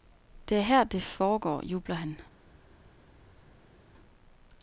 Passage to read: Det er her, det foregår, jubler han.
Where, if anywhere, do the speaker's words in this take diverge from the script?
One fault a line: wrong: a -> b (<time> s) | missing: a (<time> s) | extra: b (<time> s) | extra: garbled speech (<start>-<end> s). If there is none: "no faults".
no faults